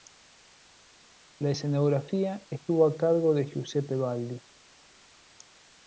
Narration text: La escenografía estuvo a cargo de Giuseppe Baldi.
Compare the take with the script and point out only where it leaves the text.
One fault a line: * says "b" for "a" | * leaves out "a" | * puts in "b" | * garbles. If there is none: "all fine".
all fine